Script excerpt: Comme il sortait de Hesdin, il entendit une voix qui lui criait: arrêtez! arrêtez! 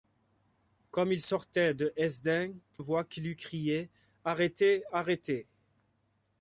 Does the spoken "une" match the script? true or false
false